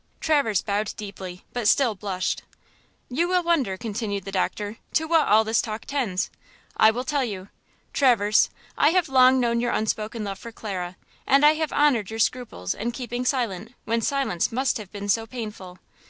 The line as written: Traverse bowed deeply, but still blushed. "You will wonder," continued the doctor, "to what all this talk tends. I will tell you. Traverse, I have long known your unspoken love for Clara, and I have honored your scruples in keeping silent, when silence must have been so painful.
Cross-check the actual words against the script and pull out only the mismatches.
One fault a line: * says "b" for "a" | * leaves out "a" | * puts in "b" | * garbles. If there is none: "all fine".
all fine